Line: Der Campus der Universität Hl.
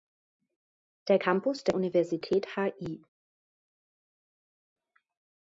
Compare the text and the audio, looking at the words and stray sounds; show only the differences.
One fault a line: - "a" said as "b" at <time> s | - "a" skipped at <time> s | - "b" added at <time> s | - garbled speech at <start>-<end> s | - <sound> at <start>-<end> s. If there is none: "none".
none